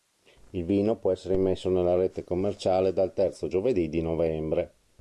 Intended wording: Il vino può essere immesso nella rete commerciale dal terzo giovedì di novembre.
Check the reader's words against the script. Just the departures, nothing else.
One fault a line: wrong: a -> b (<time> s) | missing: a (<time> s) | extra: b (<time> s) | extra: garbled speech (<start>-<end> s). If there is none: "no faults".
no faults